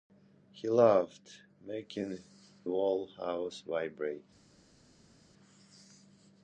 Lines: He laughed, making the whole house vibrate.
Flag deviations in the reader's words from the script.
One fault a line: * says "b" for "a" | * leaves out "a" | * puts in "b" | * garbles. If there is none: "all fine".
* leaves out "the"